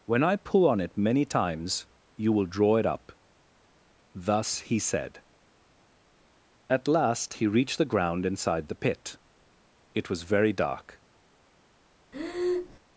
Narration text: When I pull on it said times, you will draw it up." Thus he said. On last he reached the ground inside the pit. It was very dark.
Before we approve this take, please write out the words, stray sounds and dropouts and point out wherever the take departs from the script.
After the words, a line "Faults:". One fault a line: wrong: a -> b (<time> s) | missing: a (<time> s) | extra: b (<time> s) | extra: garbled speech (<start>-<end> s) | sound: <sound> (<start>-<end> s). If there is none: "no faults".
When I pull on it many times, you will draw it up." Thus he said. At last he reached the ground inside the pit. It was very dark.
Faults:
wrong: said -> many (1.0 s)
wrong: On -> At (6.7 s)
sound: breath (12.1-12.8 s)